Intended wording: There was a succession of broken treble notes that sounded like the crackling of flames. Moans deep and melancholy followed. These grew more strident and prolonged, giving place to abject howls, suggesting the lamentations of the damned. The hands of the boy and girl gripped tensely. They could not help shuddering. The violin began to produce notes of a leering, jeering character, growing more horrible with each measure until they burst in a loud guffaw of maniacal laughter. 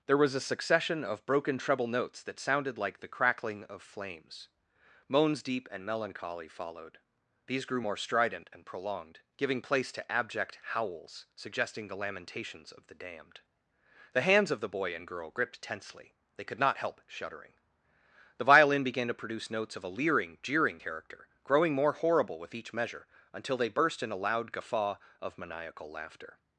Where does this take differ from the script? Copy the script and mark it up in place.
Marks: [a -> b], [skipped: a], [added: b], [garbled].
There was a succession of broken treble notes that sounded like the crackling of flames. Moans deep and melancholy followed. These grew more strident and prolonged, giving place to abject howls, suggesting the lamentations of the damned. The hands of the boy and girl gripped tensely. They could not help shuddering. The violin began to produce notes of a leering, jeering character, growing more horrible with each measure until they burst in a loud guffaw of maniacal laughter.